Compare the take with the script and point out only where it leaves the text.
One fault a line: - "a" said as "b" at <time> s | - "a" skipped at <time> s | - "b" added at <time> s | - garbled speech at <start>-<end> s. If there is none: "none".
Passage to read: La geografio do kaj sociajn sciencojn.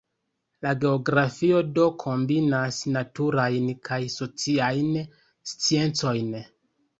- "kombinas naturajn" added at 2.0 s